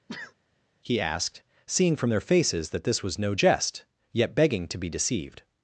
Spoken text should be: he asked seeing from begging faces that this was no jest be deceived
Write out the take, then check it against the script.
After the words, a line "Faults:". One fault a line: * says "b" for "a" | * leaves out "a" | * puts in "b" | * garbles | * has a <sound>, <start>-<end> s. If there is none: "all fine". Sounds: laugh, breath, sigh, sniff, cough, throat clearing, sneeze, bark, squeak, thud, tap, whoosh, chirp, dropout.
he asked seeing from their faces that this was no jest yet begging to be deceived
Faults:
* has a sneeze, 0.1-0.3 s
* says "their" for "begging"
* puts in "yet begging to"